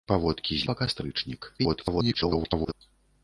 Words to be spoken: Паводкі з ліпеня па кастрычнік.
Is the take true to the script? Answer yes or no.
no